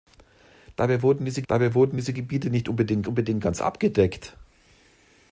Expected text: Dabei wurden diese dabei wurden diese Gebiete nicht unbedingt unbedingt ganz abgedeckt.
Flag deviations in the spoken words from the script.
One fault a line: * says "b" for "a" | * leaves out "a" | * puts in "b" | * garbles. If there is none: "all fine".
all fine